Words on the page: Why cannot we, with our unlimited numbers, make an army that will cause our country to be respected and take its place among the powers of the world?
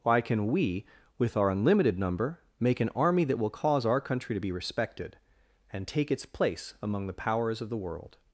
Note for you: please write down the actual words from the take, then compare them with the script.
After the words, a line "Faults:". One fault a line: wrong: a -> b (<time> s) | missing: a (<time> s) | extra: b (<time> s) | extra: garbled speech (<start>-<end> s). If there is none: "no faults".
Why can we, with our unlimited number, make an army that will cause our country to be respected and take its place among the powers of the world?
Faults:
wrong: cannot -> can (0.2 s)
wrong: numbers -> number (2.0 s)